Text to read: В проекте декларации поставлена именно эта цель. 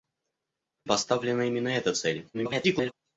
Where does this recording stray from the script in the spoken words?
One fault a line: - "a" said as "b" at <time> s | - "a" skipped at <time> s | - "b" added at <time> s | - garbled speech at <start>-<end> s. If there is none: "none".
- "проекте декларации" skipped at 0.9 s
- garbled speech at 2.3-2.9 s